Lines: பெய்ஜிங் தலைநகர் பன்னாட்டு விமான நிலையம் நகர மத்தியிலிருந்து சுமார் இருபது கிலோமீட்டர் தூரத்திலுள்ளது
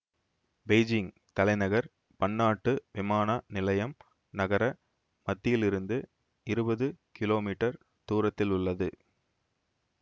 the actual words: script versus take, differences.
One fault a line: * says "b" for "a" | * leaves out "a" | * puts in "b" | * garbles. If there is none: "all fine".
* leaves out "சுமார்"